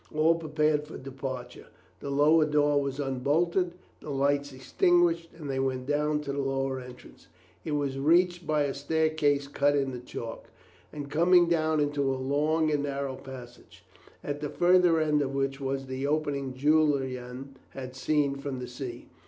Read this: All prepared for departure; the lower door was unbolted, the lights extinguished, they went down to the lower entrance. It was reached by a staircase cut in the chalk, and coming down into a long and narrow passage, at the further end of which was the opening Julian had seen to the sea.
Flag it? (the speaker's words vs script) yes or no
yes